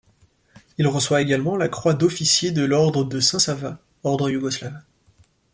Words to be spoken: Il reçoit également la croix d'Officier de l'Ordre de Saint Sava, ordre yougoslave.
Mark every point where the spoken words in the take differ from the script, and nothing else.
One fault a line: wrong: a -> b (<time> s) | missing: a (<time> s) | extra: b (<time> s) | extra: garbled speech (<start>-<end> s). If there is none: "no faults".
no faults